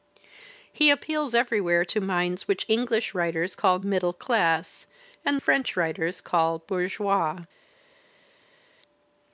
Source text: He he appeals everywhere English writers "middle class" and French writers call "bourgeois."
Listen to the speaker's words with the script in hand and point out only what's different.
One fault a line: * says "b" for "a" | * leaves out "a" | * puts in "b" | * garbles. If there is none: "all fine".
* leaves out "he"
* puts in "to minds which"
* puts in "call"